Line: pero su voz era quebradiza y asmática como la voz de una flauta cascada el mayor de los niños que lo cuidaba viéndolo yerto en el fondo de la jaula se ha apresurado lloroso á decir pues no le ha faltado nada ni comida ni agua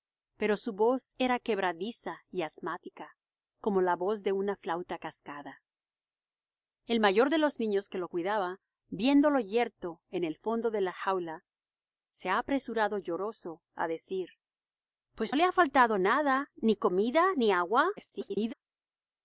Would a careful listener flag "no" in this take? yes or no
yes